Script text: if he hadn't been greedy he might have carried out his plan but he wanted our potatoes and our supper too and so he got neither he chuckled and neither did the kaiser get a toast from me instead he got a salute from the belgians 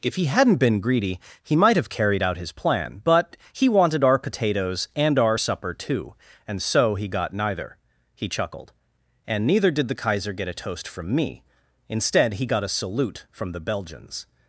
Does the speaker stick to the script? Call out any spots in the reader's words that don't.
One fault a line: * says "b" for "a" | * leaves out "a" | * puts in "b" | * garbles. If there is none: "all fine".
all fine